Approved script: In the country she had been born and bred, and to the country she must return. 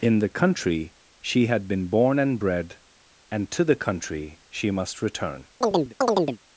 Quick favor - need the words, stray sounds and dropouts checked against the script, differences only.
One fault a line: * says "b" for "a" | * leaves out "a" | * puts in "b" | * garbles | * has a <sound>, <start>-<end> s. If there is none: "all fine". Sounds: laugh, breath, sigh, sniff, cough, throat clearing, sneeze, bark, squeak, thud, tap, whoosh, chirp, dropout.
* has a chirp, 5.6-6.4 s